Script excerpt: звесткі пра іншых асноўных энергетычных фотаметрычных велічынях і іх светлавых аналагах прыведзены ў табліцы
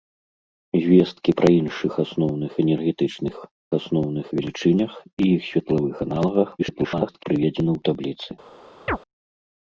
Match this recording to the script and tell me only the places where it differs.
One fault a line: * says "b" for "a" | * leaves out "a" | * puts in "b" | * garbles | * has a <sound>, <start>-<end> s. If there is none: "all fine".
* says "асноўных" for "фотаметрычных"
* garbles
* has a chirp, 8.9-9.0 s